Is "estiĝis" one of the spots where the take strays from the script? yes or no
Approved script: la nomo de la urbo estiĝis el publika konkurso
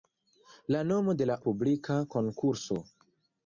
yes